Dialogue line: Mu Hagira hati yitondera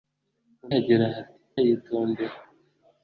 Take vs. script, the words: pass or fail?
pass